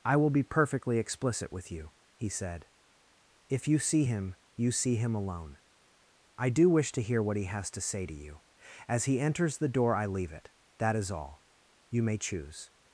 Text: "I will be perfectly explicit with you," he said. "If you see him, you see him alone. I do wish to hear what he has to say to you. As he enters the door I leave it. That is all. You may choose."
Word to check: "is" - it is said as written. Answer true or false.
true